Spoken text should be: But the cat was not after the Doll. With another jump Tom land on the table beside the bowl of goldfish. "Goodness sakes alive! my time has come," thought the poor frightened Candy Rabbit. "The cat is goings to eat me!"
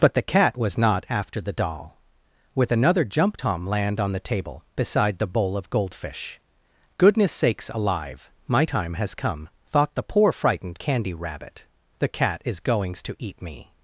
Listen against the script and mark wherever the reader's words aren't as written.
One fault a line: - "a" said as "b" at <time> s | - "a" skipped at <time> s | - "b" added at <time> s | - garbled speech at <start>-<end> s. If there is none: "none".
none